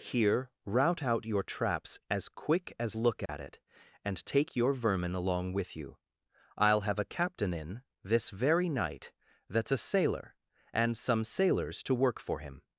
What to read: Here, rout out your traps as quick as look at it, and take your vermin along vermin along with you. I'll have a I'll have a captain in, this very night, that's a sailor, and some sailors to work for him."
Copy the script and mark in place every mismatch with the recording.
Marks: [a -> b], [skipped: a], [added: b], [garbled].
Here, rout out your traps as quick as look at it, and take your vermin along [skipped: vermin along] with you. I'll have a [skipped: I'll have a] captain in, this very night, that's a sailor, and some sailors to work for him."